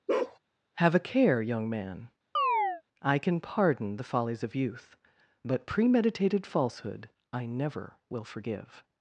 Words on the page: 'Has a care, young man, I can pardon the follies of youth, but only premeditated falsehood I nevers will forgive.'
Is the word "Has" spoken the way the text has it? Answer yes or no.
no